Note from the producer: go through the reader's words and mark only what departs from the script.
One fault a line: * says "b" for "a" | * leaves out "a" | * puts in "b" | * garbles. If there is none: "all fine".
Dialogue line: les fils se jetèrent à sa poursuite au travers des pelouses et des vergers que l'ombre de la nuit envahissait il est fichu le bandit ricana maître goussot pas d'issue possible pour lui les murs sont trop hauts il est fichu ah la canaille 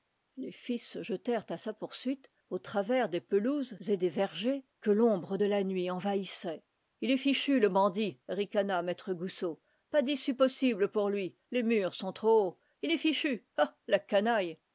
all fine